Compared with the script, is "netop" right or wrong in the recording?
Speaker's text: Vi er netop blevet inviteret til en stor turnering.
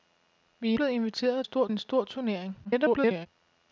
wrong